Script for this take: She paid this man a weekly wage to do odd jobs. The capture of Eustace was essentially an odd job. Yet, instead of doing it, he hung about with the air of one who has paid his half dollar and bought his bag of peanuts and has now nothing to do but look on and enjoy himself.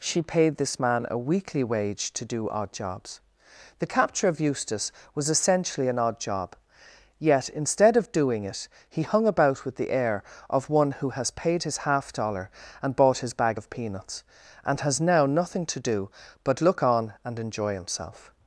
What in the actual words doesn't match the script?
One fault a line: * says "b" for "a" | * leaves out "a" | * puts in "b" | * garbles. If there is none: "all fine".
all fine